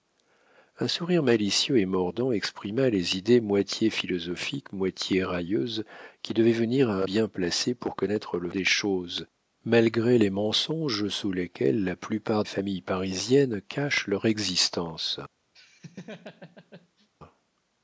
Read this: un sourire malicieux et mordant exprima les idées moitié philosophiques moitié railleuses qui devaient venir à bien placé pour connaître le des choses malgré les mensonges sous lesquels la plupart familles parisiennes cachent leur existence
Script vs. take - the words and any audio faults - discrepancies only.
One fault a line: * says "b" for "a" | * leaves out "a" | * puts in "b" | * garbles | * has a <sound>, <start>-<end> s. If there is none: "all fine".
* has a laugh, 15.5-17.1 s